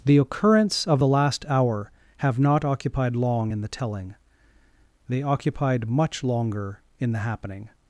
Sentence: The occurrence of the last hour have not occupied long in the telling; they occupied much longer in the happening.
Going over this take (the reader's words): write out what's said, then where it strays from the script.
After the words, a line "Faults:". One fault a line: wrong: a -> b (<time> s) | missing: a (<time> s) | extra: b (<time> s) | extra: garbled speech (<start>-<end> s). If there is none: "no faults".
The occurrence of the last hour have not occupied long in the telling; they occupied much longer in the happening.
Faults:
no faults